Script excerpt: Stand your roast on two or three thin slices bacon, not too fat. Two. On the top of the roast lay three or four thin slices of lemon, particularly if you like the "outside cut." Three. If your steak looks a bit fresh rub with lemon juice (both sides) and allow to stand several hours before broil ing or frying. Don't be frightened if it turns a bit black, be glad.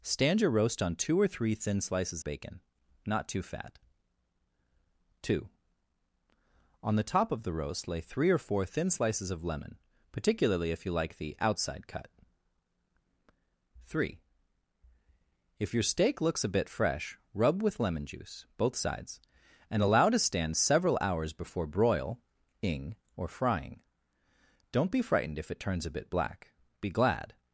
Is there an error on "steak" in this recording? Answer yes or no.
no